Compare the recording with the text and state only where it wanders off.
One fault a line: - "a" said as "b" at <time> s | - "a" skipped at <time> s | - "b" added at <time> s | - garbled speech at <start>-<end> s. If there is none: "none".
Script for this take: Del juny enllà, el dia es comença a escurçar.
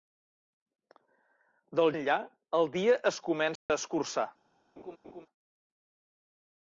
- "juny" skipped at 1.9 s